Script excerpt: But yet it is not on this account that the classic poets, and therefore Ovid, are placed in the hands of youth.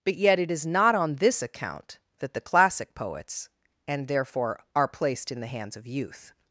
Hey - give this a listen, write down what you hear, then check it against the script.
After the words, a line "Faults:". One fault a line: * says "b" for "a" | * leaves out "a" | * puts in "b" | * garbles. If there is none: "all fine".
But yet it is not on this account that the classic poets, and therefore Are placed in the hands of youth.
Faults:
* leaves out "Ovid"